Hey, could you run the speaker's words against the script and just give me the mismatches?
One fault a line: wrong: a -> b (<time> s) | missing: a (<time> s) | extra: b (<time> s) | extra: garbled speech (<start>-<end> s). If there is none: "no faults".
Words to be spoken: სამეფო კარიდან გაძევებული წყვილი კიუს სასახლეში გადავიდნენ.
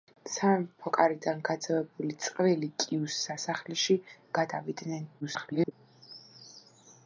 extra: garbled speech (5.2-5.7 s)